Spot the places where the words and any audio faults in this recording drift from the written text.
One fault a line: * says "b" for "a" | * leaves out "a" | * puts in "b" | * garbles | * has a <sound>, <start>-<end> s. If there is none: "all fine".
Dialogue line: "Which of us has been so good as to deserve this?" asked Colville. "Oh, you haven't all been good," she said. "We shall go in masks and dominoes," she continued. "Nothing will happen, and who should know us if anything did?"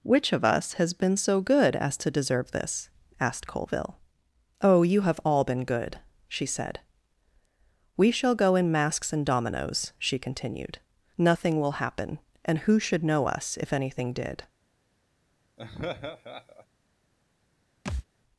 * says "have" for "haven't"
* has a laugh, 15.6-16.7 s
* has a thud, 17.8-18.0 s